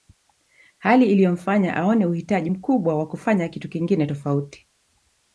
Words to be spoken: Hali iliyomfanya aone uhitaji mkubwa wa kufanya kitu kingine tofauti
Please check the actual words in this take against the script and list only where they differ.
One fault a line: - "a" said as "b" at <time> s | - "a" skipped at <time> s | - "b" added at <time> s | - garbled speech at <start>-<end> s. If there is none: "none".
none